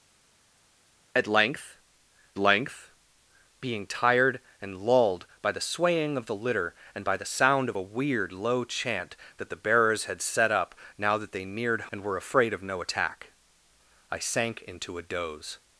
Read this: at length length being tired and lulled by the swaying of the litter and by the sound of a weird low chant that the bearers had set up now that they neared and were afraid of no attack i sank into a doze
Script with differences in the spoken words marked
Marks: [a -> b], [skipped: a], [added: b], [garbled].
at length length being tired and lulled by the swaying of the litter and by the sound of a weird low chant that the bearers had set up now that they neared and were afraid of no attack i sank into a doze